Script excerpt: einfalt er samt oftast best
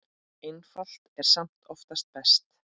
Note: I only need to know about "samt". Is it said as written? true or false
true